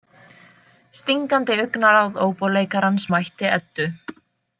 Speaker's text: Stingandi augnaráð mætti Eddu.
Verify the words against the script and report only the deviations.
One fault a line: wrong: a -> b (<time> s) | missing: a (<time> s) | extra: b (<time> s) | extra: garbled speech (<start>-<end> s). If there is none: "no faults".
extra: óbóleikarans (2.3 s)